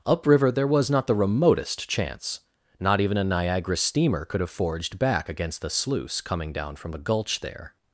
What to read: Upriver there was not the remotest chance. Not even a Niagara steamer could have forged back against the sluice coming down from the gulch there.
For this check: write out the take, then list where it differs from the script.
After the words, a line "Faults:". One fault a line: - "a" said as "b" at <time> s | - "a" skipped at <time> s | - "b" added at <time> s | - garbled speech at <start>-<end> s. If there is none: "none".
Upriver there was not the remotest chance. Not even a Niagara steamer could have forged back against the sluice coming down from the gulch there.
Faults:
none